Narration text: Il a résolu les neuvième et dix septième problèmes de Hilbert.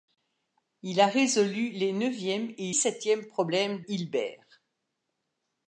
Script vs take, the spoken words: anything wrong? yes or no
yes